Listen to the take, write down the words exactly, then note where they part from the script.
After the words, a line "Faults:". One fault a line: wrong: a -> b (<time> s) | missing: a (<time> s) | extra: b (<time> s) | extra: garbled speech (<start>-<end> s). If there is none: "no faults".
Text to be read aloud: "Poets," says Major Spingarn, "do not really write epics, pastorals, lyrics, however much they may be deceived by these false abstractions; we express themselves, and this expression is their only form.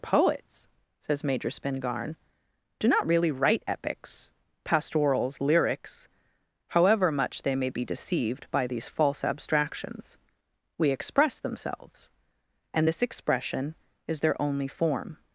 "Poets," says Major Spingarn, "do not really write epics, pastorals, lyrics, however much they may be deceived by these false abstractions; we express themselves, and this expression is their only form.
Faults:
no faults